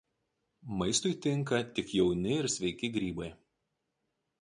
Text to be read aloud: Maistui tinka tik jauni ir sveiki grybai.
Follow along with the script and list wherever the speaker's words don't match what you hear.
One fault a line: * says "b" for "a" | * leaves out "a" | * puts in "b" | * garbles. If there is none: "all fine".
all fine